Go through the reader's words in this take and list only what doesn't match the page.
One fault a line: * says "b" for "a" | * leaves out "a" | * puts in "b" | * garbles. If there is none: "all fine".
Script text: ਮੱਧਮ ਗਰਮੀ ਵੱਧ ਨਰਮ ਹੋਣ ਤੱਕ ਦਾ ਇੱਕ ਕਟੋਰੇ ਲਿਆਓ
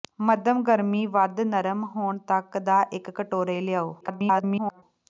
* garbles